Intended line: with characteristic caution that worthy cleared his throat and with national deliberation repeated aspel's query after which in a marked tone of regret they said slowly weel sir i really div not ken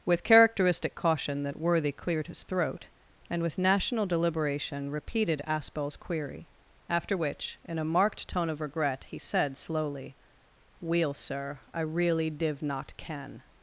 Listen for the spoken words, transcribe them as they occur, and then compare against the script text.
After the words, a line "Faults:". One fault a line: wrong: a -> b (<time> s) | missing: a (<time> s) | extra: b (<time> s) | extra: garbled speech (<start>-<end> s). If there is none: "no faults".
with characteristic caution that worthy cleared his throat and with national deliberation repeated aspel's query after which in a marked tone of regret he said slowly weel sir i really div not ken
Faults:
wrong: they -> he (9.1 s)